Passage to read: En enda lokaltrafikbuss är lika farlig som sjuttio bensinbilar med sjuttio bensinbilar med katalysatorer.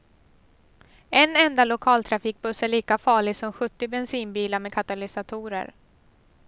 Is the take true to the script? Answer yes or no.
no